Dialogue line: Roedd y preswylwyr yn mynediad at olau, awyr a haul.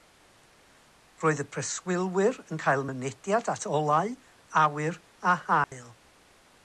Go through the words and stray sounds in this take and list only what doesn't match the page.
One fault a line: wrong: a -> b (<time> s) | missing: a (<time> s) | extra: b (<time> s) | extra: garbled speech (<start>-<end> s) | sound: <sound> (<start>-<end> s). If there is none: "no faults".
extra: cael (2.6 s)
sound: dropout (5.6-5.7 s)